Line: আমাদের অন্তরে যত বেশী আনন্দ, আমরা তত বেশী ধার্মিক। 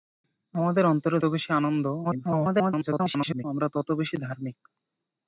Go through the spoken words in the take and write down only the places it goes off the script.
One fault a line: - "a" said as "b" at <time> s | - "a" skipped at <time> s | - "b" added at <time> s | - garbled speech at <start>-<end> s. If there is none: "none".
- "যত" skipped at 1.2 s
- garbled speech at 2.0-3.4 s